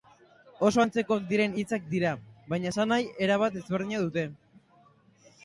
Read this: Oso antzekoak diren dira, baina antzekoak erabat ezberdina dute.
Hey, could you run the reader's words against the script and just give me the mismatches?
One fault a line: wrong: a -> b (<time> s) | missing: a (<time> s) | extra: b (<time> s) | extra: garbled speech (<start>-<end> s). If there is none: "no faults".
extra: hitzak (1.6 s)
wrong: antzekoak -> esanahi (2.7 s)